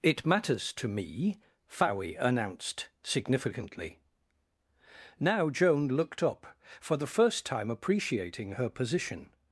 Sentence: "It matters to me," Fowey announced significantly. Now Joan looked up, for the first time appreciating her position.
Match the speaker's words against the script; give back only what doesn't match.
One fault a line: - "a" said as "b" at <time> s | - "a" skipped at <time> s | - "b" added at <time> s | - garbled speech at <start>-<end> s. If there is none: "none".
none